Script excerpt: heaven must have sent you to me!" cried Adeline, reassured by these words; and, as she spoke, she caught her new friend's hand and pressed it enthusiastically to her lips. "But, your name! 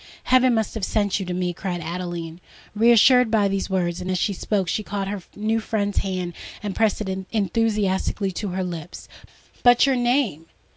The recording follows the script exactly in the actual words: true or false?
true